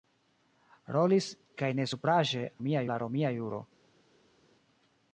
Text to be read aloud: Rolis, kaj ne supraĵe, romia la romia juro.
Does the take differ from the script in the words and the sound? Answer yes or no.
no